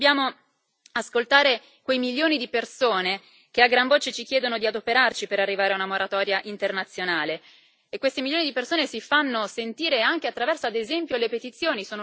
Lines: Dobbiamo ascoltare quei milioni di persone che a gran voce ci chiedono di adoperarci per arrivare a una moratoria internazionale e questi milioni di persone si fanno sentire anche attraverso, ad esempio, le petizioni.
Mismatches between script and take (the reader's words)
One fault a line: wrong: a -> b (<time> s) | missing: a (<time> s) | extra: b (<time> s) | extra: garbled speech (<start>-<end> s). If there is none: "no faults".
no faults